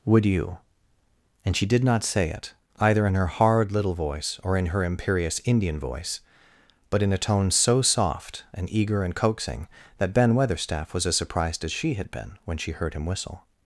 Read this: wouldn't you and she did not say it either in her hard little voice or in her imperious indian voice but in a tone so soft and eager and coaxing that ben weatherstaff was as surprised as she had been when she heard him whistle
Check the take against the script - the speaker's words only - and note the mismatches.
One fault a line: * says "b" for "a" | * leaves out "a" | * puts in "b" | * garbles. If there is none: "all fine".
* says "would" for "wouldn't"